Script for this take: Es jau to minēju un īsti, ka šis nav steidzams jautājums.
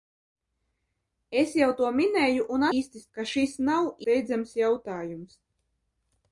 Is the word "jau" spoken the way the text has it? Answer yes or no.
yes